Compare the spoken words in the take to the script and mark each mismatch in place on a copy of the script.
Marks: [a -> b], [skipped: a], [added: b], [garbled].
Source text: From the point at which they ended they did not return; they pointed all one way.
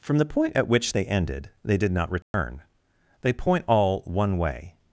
From the point at which they ended they did not return; they [pointed -> point] all one way.